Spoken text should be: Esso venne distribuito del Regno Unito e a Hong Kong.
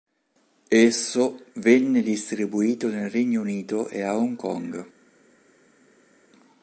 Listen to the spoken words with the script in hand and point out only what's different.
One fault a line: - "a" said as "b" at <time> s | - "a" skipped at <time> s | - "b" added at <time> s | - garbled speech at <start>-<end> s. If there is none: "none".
- "del" said as "nel" at 2.9 s